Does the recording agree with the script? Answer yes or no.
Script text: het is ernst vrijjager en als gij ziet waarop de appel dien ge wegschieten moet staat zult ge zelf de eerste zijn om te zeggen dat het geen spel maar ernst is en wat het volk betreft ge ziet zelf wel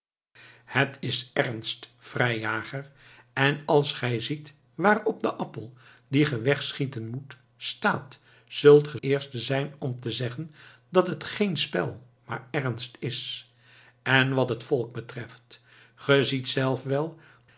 no